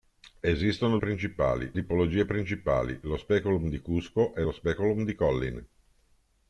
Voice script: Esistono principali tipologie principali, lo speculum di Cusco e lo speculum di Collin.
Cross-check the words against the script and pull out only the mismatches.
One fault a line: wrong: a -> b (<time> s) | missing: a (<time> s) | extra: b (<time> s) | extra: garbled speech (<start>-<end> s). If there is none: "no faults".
no faults